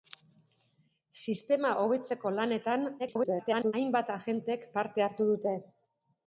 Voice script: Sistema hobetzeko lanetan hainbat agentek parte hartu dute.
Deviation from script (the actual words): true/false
true